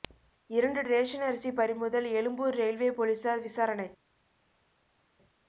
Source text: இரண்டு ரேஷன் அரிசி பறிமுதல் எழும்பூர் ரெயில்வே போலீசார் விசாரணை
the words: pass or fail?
pass